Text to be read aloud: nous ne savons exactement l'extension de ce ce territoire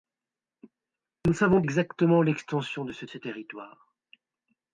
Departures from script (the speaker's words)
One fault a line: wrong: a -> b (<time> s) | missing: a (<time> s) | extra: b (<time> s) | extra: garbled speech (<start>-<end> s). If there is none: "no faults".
no faults